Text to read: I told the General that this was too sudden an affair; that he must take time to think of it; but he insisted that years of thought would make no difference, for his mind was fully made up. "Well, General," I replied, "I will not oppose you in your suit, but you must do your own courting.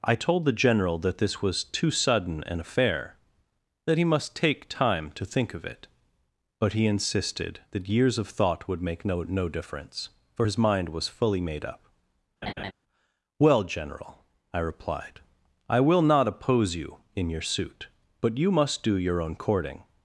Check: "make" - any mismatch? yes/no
no